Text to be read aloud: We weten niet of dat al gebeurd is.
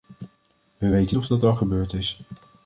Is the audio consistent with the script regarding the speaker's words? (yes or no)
no